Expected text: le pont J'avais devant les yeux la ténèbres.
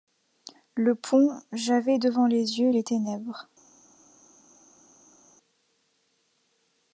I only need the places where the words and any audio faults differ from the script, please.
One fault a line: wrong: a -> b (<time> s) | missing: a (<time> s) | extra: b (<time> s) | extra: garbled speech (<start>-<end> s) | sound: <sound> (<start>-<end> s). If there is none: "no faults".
wrong: la -> les (2.7 s)